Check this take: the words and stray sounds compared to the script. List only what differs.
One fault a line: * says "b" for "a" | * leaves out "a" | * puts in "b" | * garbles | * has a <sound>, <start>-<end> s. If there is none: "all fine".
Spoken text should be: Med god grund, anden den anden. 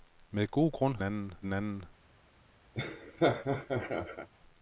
* has a laugh, 2.7-4.3 s